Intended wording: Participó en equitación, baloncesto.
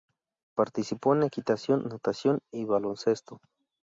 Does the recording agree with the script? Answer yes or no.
no